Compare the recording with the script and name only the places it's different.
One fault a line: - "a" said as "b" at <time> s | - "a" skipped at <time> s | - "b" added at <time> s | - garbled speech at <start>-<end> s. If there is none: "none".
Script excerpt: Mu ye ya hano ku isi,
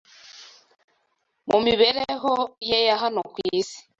- "mibereho" added at 1.6 s